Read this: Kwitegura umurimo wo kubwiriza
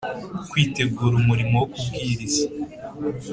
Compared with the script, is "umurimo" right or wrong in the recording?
right